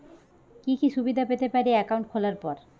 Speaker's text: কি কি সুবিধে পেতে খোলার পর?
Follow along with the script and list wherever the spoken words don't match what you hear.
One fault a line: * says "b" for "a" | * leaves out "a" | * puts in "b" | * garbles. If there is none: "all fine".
* puts in "পারি একাউন্ট"